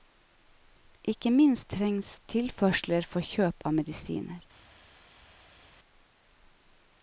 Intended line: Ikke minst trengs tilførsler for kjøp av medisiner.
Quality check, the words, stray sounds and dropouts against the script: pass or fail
pass